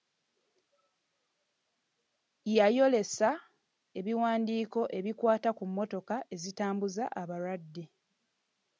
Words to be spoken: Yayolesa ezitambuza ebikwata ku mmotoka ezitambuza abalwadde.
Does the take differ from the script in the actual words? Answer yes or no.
yes